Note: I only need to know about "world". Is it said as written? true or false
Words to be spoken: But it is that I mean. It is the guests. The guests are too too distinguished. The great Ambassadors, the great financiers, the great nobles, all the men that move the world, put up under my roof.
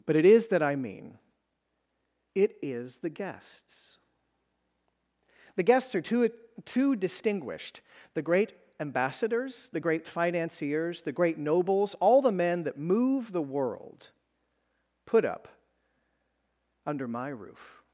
true